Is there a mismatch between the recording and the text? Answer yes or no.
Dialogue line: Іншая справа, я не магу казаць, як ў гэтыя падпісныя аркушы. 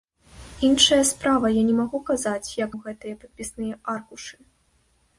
no